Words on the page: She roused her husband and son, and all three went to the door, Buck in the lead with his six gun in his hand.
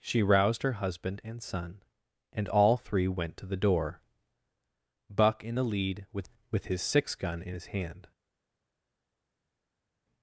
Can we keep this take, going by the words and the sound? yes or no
no